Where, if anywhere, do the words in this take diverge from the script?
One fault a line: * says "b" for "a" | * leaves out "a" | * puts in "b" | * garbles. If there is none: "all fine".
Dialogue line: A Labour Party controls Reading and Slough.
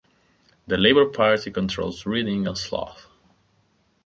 * says "The" for "A"